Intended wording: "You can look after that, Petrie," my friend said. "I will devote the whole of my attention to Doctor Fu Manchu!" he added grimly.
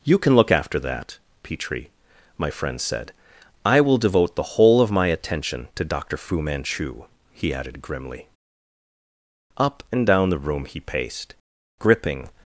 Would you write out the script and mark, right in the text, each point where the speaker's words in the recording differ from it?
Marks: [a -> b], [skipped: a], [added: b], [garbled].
"You can look after that, Petrie," my friend said. "I will devote the whole of my attention to Doctor Fu Manchu!" he added grimly. [added: Up and down the room he paced gripping]